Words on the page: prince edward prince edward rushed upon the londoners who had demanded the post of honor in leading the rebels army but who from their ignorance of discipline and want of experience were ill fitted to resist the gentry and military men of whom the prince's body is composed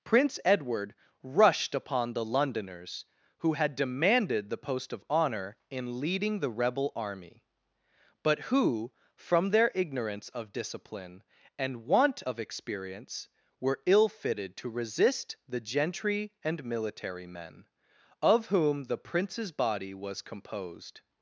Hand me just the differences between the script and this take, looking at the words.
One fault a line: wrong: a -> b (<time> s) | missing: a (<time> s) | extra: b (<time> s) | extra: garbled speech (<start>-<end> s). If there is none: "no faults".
missing: prince edward (0.9 s)
wrong: rebels -> rebel (6.5 s)
wrong: is -> was (19.9 s)